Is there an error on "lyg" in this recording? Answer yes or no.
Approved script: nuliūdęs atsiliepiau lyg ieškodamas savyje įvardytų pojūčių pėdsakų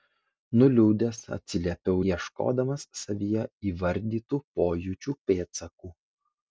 yes